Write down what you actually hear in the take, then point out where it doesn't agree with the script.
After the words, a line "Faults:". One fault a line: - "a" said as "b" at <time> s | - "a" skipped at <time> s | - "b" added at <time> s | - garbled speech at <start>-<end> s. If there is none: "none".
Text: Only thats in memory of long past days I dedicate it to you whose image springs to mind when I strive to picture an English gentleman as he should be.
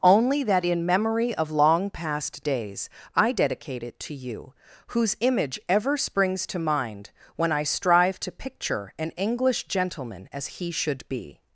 Only that in memory of long past days I dedicate it to you whose image ever springs to mind when I strive to picture an English gentleman as he should be.
Faults:
- "thats" said as "that" at 0.4 s
- "ever" added at 5.7 s